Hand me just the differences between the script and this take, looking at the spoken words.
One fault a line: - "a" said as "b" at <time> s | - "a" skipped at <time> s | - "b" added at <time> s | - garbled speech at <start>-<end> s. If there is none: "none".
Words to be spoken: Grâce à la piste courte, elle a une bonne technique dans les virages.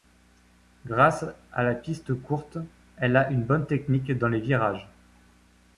none